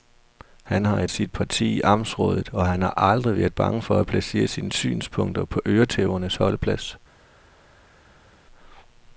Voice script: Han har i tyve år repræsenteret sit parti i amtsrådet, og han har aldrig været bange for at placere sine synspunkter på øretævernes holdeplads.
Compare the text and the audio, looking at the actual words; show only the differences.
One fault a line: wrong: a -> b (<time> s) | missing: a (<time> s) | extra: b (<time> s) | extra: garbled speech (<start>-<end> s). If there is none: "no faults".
missing: tyve år repræsenteret (1.1 s)